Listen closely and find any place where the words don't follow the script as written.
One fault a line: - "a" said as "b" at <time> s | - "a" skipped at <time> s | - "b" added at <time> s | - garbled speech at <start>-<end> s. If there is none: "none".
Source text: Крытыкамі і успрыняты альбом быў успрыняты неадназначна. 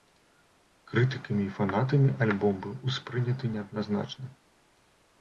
- "успрыняты" said as "фанатамі" at 1.6 s